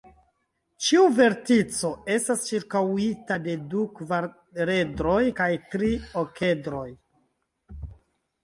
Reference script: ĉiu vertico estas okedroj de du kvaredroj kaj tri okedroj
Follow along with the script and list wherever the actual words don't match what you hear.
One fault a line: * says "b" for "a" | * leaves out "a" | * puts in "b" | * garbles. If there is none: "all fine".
* says "ĉirkaŭita" for "okedroj"